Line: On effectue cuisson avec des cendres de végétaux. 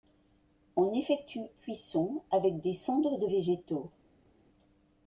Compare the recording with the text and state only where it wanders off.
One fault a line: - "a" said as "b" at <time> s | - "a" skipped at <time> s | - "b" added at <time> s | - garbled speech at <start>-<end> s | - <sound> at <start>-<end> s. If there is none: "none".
none